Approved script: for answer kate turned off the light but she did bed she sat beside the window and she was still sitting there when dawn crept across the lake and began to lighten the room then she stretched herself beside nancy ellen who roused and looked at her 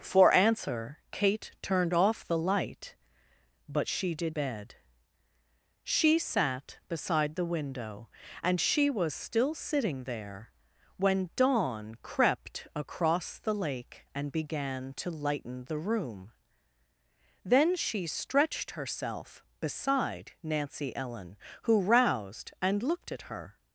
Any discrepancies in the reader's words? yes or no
no